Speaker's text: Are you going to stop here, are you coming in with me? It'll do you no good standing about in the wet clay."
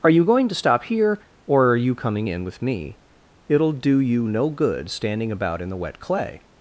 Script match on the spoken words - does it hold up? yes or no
no